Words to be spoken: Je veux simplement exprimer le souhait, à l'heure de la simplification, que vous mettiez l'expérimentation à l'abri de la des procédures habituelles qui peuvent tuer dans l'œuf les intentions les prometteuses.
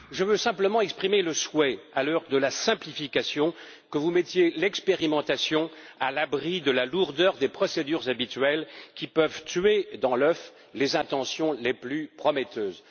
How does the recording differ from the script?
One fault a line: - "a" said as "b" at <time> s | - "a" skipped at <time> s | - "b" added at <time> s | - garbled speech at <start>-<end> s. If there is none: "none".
- "lourdeur" added at 6.8 s
- "plus" added at 11.7 s